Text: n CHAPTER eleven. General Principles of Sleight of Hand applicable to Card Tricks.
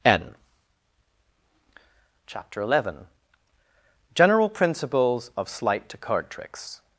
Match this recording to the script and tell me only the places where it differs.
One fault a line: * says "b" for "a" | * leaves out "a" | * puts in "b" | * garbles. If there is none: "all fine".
* leaves out "of Hand applicable"